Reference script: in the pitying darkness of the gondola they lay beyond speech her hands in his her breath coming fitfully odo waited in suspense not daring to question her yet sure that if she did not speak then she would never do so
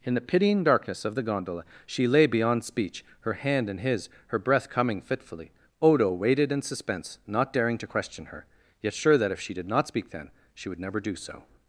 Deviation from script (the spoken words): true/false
true